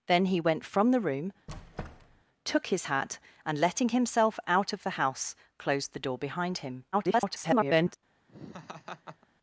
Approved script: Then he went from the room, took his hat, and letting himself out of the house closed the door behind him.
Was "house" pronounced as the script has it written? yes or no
yes